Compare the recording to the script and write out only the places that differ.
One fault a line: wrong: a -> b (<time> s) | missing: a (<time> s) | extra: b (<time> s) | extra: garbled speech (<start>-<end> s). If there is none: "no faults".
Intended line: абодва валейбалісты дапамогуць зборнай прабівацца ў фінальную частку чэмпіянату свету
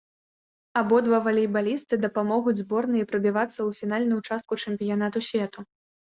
no faults